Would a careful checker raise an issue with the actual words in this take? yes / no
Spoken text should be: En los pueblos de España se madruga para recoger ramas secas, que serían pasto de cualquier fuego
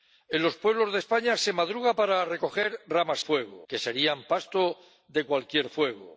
yes